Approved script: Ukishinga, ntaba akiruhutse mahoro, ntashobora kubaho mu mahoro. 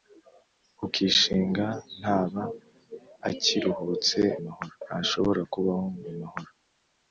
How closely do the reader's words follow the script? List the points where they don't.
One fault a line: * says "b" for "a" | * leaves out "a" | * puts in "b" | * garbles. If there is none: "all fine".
all fine